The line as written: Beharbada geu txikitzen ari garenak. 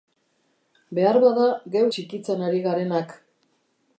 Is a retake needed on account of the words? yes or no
no